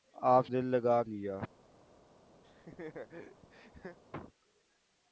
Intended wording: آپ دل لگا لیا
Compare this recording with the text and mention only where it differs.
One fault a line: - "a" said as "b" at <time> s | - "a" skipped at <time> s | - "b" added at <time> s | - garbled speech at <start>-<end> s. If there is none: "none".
none